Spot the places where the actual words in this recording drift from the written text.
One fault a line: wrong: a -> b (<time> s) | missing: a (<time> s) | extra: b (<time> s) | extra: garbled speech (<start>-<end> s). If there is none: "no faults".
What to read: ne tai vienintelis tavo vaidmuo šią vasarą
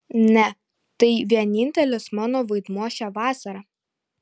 wrong: tavo -> mano (2.2 s)